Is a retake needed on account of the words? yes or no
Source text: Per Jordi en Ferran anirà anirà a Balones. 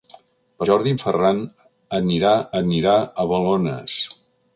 no